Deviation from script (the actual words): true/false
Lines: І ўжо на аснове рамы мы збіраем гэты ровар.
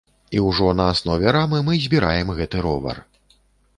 false